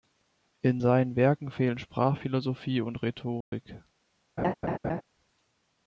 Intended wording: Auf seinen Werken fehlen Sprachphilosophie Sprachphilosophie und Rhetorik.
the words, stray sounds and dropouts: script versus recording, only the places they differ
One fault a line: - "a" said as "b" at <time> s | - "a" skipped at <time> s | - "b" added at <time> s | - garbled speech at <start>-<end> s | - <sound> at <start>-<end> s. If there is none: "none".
- "Auf" said as "In" at 0.6 s
- "Sprachphilosophie" skipped at 2.8 s
- dropout at 3.4-3.5 s
- laugh at 4.4-5.0 s